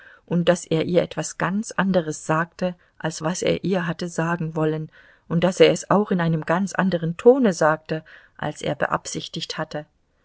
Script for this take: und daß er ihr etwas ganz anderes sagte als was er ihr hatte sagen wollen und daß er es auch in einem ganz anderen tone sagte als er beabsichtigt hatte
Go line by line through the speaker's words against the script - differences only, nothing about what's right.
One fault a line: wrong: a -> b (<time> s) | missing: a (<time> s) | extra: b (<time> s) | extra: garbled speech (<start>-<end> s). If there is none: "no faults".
no faults